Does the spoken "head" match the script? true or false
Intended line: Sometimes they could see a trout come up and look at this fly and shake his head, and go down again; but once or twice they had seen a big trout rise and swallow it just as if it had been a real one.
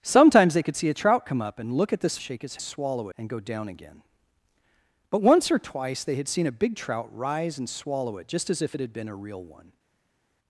false